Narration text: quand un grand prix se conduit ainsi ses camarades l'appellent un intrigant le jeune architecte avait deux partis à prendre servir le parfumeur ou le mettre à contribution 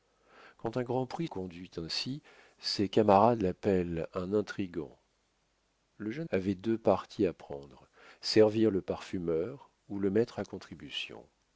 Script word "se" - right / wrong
wrong